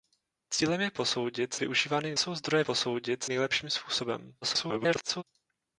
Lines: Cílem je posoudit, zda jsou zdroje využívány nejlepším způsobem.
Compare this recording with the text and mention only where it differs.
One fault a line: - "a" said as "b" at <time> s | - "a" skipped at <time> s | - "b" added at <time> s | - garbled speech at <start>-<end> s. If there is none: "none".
- "zda" said as "využívány" at 1.6 s
- "využívány" said as "posoudit" at 2.6 s
- garbled speech at 4.4-5.2 s